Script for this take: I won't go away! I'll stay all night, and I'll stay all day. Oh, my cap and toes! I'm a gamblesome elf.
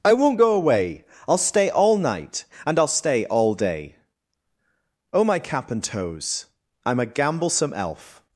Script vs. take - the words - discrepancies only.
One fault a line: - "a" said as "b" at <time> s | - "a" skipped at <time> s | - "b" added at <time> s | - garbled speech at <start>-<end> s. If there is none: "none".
none